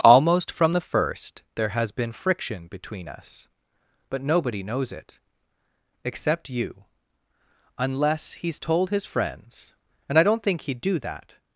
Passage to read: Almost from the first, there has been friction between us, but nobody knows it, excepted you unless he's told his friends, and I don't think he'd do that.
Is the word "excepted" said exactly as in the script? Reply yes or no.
no